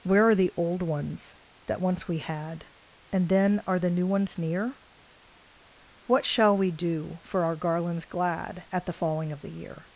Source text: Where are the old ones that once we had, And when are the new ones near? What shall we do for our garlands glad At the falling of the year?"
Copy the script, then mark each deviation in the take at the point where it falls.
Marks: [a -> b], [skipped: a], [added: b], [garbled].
Where are the old ones that once we had, And [when -> then] are the new ones near? What shall we do for our garlands glad At the falling of the year?"